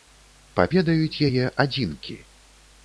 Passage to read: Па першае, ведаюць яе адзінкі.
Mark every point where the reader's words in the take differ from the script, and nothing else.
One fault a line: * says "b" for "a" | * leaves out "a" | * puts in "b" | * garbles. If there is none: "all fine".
* leaves out "першае"